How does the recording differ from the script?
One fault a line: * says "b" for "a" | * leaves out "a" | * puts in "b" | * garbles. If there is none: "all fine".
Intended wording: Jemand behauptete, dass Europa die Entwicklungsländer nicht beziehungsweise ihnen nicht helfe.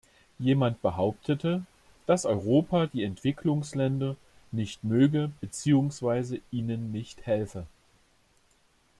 * puts in "möge"